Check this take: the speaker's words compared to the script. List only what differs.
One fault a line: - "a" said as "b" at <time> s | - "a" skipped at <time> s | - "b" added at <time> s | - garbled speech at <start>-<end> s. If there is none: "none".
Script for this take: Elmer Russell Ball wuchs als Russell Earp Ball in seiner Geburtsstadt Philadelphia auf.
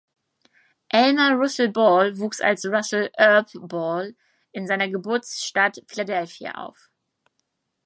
none